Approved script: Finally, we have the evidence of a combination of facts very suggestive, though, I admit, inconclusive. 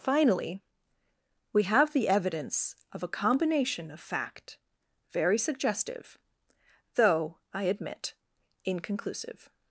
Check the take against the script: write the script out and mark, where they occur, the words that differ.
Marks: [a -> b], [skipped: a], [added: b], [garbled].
Finally, we have the evidence of a combination of [facts -> fact] very suggestive, though, I admit, inconclusive.